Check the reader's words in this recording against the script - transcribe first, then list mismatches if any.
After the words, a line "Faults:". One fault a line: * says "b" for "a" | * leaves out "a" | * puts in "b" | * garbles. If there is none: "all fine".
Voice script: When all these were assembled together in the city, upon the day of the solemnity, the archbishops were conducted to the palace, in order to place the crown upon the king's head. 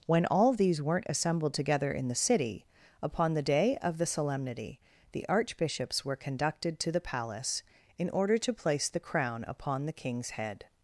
When all these weren't assembled together in the city, upon the day of the solemnity, the archbishops were conducted to the palace, in order to place the crown upon the king's head.
Faults:
* says "weren't" for "were"